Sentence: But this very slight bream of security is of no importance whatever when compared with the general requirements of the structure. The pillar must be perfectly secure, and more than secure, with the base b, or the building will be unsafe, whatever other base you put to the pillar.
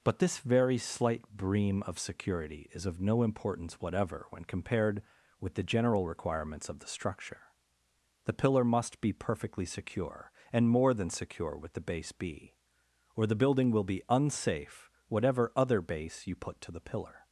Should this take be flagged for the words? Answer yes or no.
no